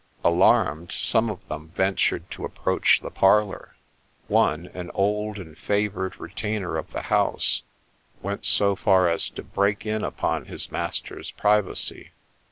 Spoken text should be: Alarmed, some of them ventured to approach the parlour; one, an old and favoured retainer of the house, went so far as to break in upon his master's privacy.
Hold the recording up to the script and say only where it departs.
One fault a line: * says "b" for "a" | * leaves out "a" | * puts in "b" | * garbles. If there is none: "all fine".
all fine